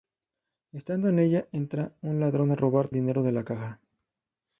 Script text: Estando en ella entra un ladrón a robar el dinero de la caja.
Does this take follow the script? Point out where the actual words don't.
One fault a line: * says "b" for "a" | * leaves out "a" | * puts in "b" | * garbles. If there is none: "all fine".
all fine